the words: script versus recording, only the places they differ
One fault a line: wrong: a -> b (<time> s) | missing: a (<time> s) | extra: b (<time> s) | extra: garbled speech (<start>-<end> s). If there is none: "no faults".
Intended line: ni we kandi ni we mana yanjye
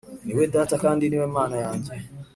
extra: data (0.6 s)